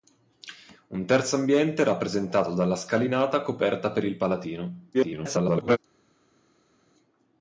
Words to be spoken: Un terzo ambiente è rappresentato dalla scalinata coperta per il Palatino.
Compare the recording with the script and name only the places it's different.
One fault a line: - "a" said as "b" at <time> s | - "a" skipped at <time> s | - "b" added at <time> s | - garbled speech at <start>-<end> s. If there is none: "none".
- garbled speech at 4.9-5.8 s